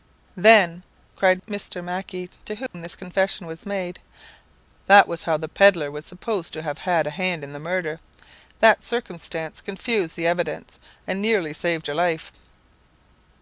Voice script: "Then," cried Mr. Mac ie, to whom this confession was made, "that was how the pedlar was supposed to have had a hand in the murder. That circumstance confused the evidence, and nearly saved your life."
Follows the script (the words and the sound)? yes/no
no